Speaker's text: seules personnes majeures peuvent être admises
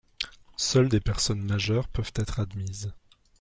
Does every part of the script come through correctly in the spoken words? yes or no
no